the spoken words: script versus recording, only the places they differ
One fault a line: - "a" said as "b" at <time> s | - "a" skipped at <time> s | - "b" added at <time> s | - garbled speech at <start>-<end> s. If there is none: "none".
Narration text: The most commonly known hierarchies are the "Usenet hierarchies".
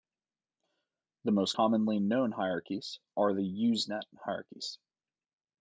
none